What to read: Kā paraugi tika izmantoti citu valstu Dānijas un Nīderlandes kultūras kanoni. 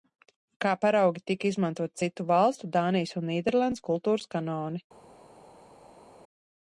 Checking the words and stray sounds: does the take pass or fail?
pass